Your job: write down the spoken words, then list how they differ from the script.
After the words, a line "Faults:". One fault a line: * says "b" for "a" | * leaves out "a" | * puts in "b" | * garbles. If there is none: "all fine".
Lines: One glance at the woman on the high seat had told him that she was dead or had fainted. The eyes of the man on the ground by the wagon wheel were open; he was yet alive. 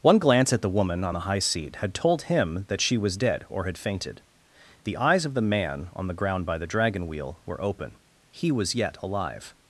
One glance at the woman on the high seat had told him that she was dead or had fainted. The eyes of the man on the ground by the dragon wheel were open; he was yet alive.
Faults:
* says "dragon" for "wagon"